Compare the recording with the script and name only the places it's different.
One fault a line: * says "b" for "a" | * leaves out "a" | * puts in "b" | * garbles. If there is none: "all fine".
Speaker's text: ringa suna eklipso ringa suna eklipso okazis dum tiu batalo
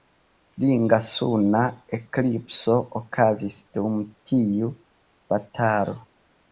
* leaves out "ringa suna eklipso"